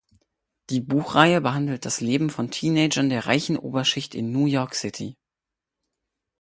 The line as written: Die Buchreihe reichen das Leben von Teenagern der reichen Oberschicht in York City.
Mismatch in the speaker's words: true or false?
true